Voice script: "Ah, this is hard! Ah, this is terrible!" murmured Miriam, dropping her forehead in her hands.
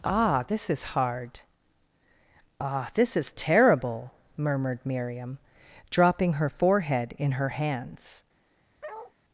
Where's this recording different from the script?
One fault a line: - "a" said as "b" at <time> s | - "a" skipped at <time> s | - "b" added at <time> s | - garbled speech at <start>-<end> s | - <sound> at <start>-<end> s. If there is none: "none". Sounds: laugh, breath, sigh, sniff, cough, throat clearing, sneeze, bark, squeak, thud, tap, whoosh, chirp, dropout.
- bark at 8.8-9.1 s